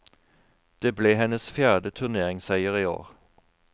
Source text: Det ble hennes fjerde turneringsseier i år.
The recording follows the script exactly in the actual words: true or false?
true